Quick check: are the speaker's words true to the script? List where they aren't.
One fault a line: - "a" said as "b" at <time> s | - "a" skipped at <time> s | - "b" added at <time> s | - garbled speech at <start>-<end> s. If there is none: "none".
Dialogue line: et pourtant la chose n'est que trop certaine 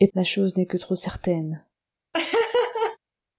- "pourtant" skipped at 0.1 s